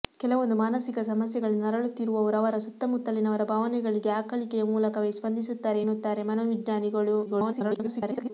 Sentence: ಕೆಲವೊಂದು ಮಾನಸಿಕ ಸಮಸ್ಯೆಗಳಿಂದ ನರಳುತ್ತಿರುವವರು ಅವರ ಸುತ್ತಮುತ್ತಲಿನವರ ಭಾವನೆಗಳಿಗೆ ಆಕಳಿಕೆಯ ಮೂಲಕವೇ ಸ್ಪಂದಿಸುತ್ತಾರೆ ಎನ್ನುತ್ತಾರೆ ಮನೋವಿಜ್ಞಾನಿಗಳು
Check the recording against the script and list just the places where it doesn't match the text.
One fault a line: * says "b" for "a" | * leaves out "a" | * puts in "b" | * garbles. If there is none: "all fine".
* garbles